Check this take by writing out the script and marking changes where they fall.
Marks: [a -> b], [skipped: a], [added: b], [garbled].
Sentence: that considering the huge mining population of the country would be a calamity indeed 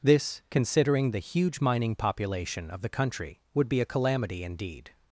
[that -> this] considering the huge mining population of the country would be a calamity indeed